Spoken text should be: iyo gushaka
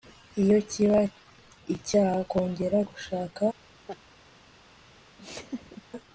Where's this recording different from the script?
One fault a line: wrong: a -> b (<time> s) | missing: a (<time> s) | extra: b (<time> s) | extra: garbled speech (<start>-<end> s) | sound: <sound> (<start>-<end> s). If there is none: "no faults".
extra: kiba icyaha kongera (0.7 s)
sound: laugh (3.9-4.0 s)
sound: laugh (5.2-5.8 s)